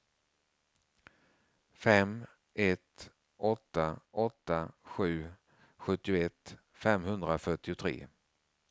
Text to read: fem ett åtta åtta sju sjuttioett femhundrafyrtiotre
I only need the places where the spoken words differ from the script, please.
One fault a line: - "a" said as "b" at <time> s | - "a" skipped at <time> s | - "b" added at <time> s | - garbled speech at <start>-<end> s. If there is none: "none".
none